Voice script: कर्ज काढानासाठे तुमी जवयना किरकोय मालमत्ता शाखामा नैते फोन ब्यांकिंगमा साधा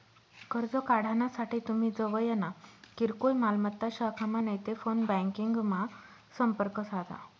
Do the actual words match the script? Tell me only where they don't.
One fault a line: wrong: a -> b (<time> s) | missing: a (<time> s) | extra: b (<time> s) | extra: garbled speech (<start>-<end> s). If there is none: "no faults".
extra: संपर्क (6.4 s)